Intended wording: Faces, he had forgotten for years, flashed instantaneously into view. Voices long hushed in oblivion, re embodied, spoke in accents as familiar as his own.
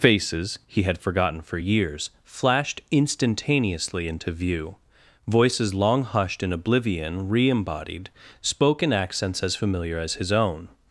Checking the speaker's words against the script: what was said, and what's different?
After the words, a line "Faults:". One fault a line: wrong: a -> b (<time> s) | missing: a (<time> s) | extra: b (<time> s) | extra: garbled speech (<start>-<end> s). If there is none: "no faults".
Faces, he had forgotten for years, flashed instantaneously into view. Voices long hushed in oblivion, re embodied, spoke in accents as familiar as his own.
Faults:
no faults